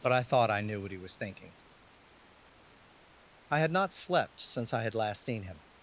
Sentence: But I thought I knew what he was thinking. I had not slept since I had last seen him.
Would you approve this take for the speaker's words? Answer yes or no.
yes